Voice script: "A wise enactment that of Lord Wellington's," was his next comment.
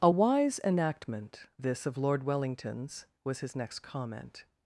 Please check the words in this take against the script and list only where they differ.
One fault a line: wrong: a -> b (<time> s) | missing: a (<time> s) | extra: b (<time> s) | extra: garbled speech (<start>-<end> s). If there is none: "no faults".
wrong: that -> this (1.6 s)